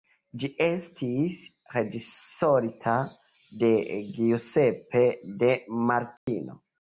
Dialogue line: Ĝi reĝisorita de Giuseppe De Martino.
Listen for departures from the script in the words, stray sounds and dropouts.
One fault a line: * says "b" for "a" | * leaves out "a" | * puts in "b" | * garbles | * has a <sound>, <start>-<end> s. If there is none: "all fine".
* puts in "estis"
* has a dropout, 6.2-6.3 s